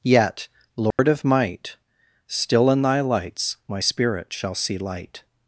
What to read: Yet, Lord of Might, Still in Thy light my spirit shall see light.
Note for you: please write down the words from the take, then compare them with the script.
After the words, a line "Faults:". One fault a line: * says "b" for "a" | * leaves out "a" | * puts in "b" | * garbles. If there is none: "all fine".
Yet, Lord of Might, Still in Thy lights my spirit shall see light.
Faults:
* says "lights" for "light"